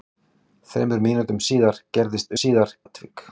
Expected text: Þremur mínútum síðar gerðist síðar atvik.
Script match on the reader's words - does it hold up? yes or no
yes